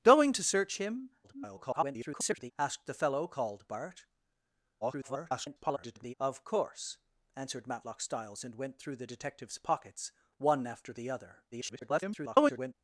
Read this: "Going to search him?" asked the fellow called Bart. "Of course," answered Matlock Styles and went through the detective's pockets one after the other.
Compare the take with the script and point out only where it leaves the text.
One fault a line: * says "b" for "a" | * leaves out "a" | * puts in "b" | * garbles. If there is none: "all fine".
* garbles
* garbles
* garbles